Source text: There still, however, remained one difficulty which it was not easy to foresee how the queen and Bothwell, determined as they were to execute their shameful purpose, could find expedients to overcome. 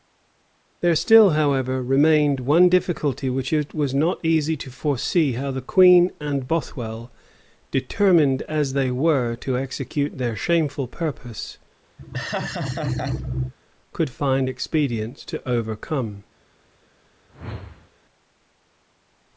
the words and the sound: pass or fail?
fail